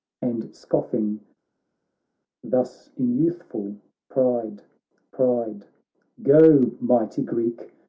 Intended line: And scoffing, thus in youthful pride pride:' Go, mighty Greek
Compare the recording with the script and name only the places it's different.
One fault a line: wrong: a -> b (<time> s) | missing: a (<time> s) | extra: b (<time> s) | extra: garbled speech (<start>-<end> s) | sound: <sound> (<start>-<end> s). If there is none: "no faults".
no faults